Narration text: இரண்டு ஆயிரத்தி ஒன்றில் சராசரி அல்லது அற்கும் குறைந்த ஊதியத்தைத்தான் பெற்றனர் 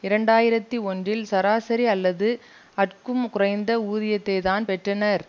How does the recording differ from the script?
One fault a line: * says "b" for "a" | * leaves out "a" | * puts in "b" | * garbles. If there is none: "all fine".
all fine